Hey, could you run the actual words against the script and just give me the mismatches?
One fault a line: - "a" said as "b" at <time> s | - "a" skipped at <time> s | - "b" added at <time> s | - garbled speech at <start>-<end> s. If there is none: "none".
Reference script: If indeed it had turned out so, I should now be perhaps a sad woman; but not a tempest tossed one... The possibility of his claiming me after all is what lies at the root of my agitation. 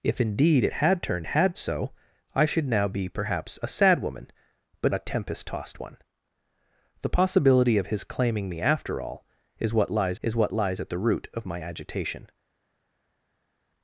- "out" said as "had" at 1.3 s
- "not" skipped at 4.9 s
- "is what lies" added at 10.2 s